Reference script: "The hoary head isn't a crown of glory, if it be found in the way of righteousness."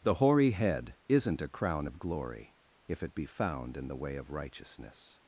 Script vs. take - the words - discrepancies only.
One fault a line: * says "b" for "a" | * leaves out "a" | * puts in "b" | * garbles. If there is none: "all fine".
all fine